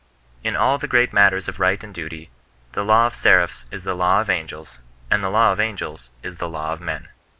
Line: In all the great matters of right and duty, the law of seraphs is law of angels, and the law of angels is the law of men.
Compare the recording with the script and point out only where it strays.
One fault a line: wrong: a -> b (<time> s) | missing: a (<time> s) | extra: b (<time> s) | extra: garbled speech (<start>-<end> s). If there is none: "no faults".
extra: the (3.8 s)